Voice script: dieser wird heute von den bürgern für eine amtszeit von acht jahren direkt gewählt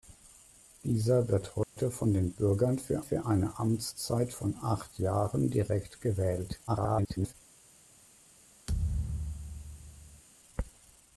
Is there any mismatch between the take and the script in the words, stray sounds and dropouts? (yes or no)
yes